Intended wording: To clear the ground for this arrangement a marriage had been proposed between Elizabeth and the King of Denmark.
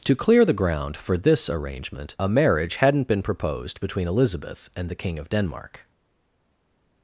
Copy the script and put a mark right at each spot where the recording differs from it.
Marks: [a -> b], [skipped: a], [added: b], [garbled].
To clear the ground for this arrangement a marriage [had -> hadn't] been proposed between Elizabeth and the King of Denmark.